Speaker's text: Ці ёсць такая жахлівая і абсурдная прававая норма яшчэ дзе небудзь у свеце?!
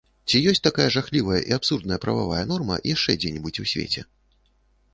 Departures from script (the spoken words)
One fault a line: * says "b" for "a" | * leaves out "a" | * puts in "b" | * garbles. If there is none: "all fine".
all fine